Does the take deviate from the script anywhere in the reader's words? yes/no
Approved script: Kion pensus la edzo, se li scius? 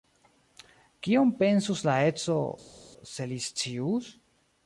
no